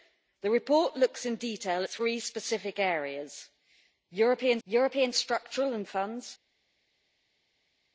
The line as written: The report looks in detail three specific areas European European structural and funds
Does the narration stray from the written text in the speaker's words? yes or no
no